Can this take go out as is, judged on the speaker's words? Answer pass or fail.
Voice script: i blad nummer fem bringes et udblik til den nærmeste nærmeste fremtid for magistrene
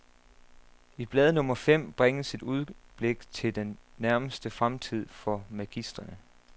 fail